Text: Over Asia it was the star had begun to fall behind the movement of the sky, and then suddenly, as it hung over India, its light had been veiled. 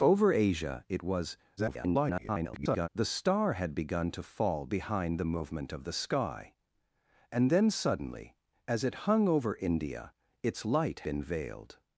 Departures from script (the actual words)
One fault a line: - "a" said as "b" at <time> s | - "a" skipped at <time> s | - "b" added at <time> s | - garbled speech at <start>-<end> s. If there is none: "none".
- garbled speech at 1.6-2.9 s
- "had" skipped at 11.1 s